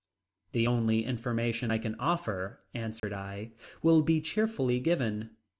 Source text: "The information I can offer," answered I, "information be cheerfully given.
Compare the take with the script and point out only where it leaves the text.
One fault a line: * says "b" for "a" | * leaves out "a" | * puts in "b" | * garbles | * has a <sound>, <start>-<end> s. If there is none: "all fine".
* puts in "only"
* has a dropout, 3.0-3.0 s
* says "will" for "information"